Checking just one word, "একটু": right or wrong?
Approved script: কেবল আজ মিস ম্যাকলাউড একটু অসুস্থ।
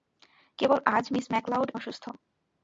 wrong